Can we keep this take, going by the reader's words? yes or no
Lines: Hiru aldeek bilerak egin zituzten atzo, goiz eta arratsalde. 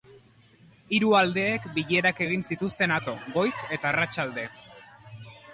yes